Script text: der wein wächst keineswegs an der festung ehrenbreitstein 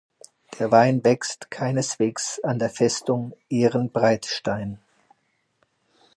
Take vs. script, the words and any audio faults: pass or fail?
pass